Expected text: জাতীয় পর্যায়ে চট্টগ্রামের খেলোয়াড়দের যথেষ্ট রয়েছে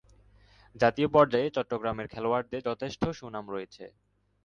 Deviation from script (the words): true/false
true